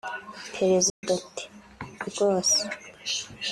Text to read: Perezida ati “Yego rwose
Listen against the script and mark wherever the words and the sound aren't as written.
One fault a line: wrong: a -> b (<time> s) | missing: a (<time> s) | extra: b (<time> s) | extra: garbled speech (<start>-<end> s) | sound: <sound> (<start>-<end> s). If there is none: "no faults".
sound: dropout (0.9-1.0 s)
missing: Yego (1.4 s)